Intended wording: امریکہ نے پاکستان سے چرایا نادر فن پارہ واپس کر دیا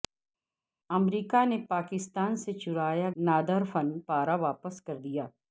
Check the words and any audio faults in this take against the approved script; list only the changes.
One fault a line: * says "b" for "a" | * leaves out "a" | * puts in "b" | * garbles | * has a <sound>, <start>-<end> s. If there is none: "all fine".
all fine